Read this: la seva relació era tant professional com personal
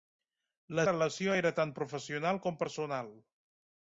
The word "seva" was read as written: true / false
false